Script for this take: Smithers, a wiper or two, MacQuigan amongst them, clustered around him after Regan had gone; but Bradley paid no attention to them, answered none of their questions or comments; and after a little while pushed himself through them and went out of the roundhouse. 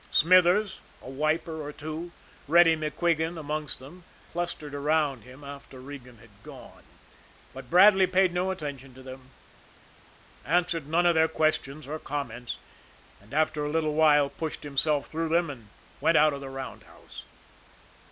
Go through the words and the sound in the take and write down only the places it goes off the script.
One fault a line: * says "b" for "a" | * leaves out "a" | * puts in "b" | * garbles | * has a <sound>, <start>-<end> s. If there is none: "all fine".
* puts in "Reddy"